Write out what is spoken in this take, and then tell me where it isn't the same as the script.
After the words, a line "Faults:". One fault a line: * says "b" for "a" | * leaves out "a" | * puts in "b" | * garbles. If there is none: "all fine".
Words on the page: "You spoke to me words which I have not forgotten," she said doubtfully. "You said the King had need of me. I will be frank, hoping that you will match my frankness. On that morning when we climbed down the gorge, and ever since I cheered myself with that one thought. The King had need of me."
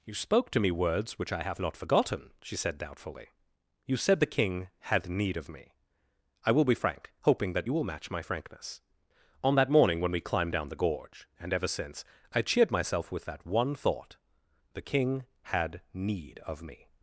"You spoke to me words which I have not forgotten," she said doubtfully. "You said the King had need of me. I will be frank, hoping that you will match my frankness. On that morning when we climbed down the gorge, and ever since I cheered myself with that one thought. The King had need of me."
Faults:
all fine